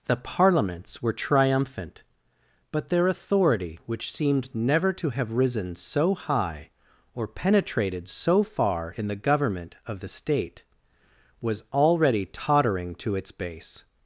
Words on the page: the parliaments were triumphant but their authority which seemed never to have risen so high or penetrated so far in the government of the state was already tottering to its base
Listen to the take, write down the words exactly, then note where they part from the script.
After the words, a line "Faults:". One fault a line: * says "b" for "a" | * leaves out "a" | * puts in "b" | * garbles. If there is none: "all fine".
the parliaments were triumphant but their authority which seemed never to have risen so high or penetrated so far in the government of the state was already tottering to its base
Faults:
all fine